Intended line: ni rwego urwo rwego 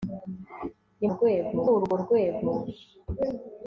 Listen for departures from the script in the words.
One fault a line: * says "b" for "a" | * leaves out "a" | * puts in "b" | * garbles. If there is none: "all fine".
all fine